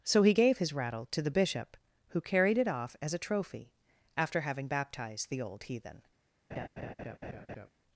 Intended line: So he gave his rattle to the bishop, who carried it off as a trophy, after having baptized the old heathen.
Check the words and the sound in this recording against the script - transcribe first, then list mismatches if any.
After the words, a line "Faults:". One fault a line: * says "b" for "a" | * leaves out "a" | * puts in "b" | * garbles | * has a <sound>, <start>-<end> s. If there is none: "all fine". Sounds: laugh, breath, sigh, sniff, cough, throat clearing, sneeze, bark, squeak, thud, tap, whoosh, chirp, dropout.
So he gave his rattle to the bishop, who carried it off as a trophy, after having baptized the old heathen.
Faults:
* has a laugh, 6.5-7.7 s